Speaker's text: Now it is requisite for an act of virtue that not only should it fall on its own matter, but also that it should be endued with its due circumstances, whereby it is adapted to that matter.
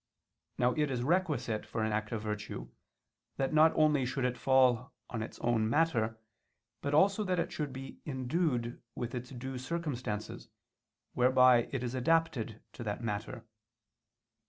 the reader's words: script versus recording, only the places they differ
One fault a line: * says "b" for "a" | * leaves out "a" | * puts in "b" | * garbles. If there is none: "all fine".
all fine